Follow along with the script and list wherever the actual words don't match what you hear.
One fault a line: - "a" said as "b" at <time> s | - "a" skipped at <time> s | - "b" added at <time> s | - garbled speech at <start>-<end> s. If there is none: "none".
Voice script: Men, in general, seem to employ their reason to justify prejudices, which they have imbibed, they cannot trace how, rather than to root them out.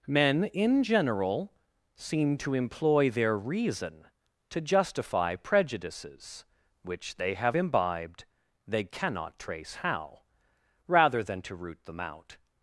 none